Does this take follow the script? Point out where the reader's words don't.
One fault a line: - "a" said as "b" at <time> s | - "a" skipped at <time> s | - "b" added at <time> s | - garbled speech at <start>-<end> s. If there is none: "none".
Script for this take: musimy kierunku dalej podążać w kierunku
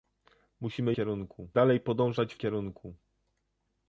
none